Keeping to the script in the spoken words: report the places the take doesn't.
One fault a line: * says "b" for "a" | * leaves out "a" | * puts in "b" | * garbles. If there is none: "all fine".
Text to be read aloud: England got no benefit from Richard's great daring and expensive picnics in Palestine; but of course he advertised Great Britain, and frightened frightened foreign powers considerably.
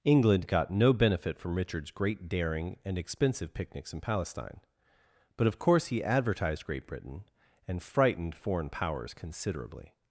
* leaves out "frightened"